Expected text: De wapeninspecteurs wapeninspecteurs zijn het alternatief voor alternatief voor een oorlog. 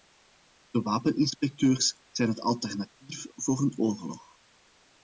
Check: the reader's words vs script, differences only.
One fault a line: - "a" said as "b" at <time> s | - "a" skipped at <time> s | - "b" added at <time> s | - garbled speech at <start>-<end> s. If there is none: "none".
- "wapeninspecteurs" skipped at 2.0 s
- "alternatief voor" skipped at 3.6 s